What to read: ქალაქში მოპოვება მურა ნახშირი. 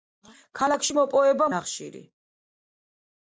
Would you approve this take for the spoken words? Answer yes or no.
no